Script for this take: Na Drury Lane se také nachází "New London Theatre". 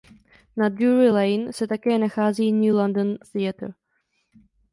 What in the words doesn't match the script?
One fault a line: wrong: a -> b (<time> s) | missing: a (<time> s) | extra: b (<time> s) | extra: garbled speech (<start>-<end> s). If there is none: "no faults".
no faults